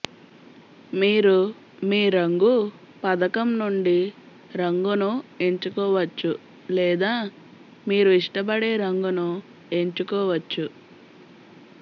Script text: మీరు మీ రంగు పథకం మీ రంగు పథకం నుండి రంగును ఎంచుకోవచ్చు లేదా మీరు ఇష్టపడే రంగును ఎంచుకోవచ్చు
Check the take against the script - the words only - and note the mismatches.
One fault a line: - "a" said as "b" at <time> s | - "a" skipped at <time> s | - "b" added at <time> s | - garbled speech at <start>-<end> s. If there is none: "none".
- "మీ రంగు పథకం" skipped at 3.6 s